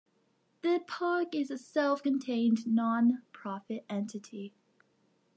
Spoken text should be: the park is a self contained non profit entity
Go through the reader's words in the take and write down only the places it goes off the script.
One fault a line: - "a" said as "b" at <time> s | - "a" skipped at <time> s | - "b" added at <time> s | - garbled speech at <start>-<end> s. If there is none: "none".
none